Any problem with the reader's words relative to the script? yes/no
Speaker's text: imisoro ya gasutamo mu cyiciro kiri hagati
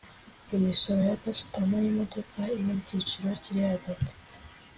yes